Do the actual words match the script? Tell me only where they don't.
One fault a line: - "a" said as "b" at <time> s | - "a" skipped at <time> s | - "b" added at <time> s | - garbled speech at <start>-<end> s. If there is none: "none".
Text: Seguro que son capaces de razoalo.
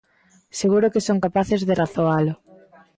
none